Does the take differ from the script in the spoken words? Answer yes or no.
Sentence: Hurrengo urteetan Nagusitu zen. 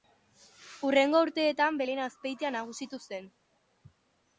yes